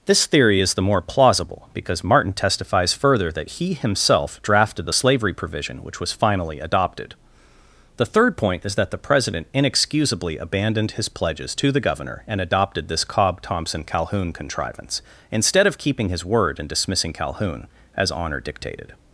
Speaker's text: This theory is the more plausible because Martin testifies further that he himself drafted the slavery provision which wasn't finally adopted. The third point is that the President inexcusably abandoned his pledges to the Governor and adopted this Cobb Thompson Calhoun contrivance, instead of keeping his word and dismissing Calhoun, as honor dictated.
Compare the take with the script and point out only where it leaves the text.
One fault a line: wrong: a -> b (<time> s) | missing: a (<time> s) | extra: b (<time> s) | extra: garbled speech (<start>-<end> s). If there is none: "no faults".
wrong: wasn't -> was (6.0 s)